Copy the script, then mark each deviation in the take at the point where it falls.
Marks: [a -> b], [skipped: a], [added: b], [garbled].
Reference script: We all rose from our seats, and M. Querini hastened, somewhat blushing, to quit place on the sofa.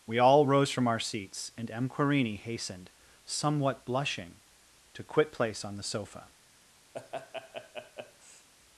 We all rose from our seats, and M. Querini hastened, somewhat blushing, to quit place on the sofa.